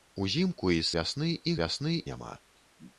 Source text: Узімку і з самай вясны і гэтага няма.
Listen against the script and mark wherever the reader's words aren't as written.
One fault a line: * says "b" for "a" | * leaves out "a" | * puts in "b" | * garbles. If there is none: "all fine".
* leaves out "самай"
* says "вясны" for "гэтага"